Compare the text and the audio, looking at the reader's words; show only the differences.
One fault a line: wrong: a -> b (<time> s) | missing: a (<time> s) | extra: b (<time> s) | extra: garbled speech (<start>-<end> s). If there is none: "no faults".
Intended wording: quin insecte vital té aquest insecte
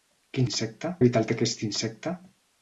no faults